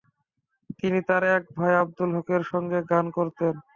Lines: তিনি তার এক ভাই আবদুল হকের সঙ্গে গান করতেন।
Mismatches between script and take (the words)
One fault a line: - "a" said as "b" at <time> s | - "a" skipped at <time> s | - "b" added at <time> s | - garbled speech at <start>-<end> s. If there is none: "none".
none